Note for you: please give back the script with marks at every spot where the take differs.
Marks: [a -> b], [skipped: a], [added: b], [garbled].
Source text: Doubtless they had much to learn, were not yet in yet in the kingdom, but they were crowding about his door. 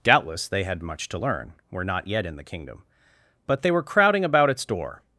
Doubtless they had much to learn, were not yet in [skipped: yet in] the kingdom, but they were crowding about [his -> its] door.